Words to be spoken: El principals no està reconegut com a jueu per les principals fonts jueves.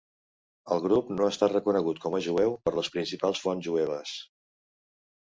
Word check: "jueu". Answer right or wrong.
right